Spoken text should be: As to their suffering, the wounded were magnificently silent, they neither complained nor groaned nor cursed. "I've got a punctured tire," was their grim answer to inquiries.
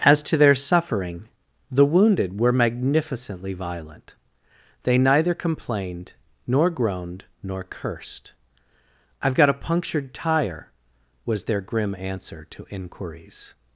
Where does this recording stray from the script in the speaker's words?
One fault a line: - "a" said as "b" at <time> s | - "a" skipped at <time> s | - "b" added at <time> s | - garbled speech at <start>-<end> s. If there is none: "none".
- "silent" said as "violent" at 3.5 s